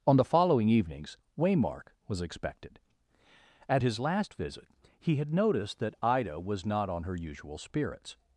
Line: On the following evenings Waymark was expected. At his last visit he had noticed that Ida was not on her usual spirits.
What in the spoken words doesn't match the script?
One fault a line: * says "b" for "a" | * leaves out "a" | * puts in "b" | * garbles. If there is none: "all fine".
all fine